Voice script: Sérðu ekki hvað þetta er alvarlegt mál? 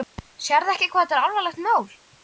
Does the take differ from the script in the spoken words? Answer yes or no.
no